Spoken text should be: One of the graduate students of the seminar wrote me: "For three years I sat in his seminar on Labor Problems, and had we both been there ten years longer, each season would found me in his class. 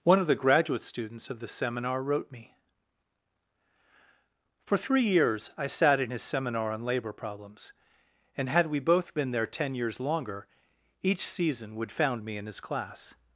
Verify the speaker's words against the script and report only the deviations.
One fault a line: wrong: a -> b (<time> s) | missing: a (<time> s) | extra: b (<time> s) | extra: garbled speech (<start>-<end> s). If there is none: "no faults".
no faults